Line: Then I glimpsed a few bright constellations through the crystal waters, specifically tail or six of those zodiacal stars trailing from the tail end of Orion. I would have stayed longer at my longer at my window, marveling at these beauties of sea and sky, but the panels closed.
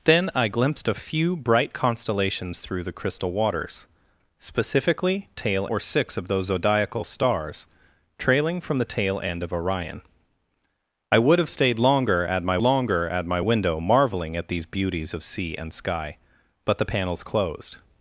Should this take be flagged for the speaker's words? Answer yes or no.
no